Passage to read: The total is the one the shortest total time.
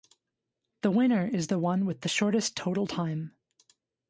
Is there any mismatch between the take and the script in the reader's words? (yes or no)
yes